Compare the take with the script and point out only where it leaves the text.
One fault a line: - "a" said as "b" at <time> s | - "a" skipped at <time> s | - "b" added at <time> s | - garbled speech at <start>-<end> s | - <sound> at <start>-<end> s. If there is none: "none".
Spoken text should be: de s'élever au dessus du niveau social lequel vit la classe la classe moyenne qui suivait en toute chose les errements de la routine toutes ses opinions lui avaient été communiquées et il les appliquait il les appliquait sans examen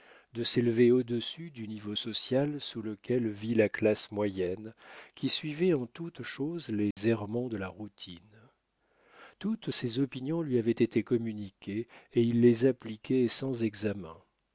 - "sous" added at 2.6 s
- "la classe" skipped at 4.1 s
- dropout at 6.9-7.0 s
- "il les appliquait" skipped at 13.3 s